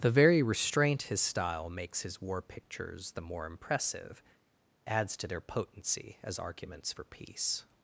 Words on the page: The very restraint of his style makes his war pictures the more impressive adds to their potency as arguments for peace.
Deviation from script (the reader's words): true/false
true